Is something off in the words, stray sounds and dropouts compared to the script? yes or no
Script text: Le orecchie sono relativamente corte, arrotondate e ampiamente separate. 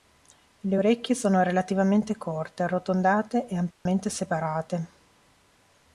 yes